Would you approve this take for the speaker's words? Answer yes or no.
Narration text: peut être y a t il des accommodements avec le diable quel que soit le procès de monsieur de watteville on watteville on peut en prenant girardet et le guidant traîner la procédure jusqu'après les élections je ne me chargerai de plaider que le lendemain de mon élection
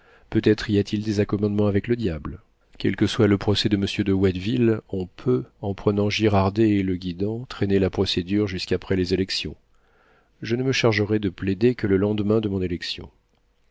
no